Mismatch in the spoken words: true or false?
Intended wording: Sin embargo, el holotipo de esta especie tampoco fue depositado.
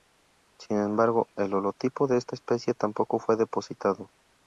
false